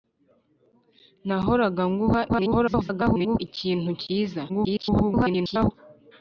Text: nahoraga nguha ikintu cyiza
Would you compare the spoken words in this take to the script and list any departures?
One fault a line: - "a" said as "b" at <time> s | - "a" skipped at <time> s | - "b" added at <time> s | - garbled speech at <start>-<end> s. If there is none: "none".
- garbled speech at 2.3-3.4 s
- garbled speech at 4.5-5.7 s